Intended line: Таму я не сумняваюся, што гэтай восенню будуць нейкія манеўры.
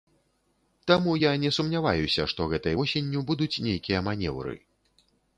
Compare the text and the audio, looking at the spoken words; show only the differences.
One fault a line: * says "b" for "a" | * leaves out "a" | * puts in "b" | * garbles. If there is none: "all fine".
all fine